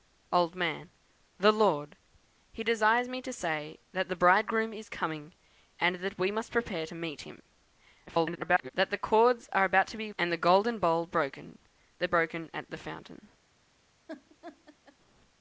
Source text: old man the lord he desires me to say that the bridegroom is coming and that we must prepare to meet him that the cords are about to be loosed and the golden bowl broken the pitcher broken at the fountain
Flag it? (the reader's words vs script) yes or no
yes